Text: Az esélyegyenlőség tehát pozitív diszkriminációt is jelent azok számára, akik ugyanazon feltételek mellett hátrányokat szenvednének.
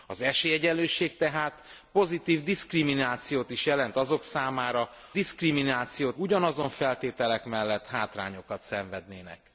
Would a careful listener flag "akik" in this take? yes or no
yes